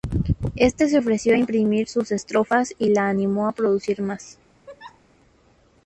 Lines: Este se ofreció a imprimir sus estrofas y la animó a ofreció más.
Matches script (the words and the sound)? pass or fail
fail